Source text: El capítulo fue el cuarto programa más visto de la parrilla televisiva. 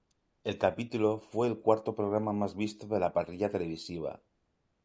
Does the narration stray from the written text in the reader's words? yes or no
no